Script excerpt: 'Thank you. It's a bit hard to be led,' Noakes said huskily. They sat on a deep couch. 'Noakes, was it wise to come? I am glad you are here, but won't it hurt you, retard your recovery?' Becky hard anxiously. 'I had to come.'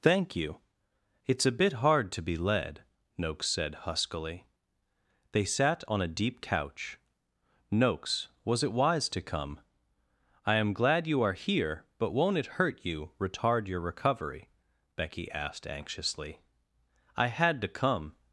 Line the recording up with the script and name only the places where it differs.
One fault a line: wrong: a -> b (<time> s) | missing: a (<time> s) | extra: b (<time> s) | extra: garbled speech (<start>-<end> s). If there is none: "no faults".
wrong: hard -> asked (15.3 s)